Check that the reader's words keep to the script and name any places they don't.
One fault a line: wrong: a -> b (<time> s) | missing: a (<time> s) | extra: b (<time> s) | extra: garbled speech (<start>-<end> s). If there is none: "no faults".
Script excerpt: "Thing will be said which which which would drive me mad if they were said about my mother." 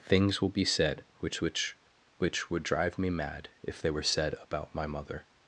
wrong: Thing -> Things (0.0 s)